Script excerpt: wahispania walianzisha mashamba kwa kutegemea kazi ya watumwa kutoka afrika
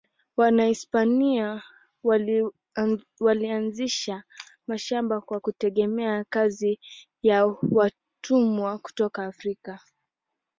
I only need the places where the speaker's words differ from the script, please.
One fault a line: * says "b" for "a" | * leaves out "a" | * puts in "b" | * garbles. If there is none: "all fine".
all fine